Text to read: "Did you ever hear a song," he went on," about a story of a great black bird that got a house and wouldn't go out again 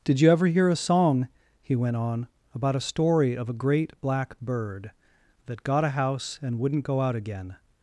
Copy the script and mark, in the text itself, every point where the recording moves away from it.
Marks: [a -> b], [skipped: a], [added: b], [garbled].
"Did you ever hear a song," he went on," about a story of a great black bird that got a house and wouldn't go out again